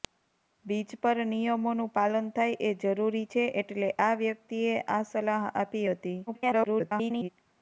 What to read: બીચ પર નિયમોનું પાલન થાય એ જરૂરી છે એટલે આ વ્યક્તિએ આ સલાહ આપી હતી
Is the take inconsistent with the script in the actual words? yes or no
yes